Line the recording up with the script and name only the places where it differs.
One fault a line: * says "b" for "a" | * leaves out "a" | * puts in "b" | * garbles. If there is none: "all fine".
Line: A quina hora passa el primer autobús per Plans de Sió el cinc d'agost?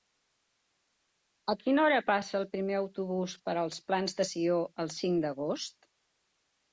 * puts in "els"